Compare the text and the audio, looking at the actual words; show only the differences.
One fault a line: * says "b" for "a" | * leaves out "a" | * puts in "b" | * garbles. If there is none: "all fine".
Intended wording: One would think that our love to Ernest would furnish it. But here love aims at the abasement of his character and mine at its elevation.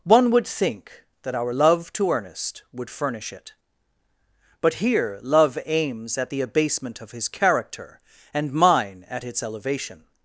all fine